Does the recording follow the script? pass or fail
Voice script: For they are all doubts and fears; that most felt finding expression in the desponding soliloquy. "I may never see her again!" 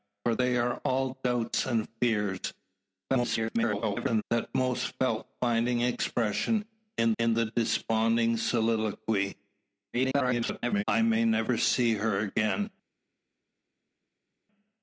fail